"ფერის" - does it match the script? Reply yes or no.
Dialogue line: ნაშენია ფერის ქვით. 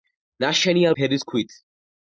yes